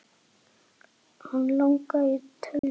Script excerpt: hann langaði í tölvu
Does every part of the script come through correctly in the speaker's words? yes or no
yes